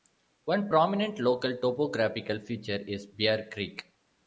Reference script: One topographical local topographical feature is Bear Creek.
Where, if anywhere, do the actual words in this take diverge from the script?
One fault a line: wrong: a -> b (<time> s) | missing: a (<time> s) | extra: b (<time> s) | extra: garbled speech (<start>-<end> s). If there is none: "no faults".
wrong: topographical -> prominent (0.7 s)